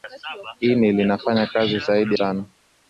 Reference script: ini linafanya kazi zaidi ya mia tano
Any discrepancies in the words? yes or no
yes